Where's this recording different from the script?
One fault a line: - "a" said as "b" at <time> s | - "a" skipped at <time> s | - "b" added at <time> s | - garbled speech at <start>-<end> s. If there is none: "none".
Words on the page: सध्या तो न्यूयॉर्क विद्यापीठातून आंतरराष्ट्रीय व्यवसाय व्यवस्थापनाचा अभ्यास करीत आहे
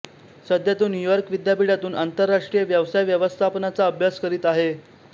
none